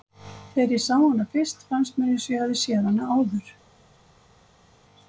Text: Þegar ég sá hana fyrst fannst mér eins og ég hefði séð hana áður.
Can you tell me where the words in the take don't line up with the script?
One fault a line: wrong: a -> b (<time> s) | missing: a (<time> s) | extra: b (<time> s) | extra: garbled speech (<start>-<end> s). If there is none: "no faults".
no faults